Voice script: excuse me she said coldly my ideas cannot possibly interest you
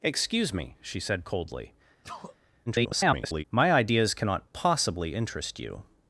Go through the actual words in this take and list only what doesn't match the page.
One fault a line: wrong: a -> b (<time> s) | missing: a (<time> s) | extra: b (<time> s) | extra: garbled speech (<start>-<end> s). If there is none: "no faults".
extra: garbled speech (2.7-3.4 s)